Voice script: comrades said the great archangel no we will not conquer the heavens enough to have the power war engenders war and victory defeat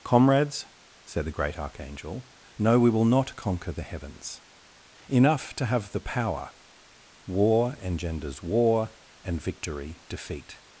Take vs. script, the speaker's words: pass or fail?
pass